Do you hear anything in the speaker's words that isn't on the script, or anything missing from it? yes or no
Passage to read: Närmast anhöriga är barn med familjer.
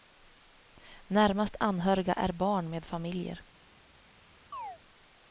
no